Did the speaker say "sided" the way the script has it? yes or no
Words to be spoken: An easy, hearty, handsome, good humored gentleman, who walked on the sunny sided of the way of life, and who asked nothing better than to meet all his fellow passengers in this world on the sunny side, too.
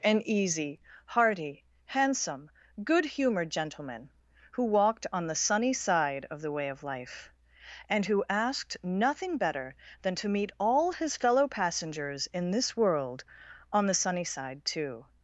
no